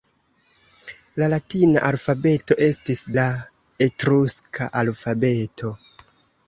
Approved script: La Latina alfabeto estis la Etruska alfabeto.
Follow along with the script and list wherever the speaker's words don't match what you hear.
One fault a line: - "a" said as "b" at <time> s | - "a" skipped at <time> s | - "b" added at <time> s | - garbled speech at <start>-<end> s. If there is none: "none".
none